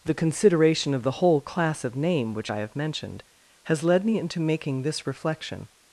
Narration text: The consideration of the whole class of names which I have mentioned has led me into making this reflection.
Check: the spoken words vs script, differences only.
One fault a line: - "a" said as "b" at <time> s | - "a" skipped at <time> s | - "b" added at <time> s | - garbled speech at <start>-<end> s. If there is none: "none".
- "names" said as "name" at 1.9 s